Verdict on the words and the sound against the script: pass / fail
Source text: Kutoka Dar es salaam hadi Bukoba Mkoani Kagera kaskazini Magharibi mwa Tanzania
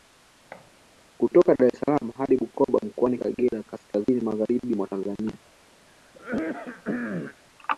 fail